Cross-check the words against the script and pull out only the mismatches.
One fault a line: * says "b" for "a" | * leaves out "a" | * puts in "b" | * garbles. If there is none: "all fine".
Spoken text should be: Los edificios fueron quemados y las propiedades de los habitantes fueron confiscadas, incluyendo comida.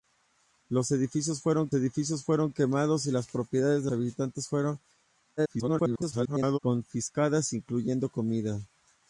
* puts in "edificios fueron"
* leaves out "los"
* garbles